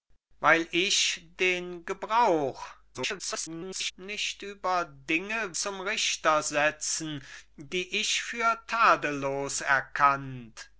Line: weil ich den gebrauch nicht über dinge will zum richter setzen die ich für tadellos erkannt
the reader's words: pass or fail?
fail